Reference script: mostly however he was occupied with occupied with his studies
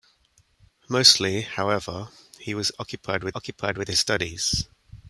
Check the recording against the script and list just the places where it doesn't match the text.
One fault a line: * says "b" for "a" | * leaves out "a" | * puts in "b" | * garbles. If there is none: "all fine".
all fine